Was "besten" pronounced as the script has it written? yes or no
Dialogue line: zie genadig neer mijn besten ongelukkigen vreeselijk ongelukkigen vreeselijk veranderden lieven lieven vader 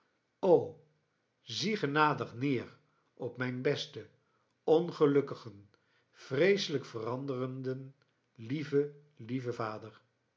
yes